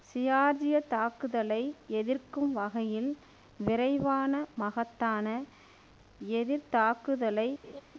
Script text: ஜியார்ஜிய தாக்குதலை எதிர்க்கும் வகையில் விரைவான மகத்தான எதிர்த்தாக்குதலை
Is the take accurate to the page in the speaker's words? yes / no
yes